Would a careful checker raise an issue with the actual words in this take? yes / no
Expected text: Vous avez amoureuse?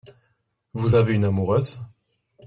yes